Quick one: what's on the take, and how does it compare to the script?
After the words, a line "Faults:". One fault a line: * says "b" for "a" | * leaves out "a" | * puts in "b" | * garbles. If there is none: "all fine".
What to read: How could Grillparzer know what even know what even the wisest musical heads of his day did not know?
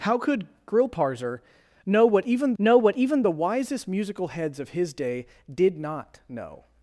How could Grillparzer know what even know what even the wisest musical heads of his day did not know?
Faults:
all fine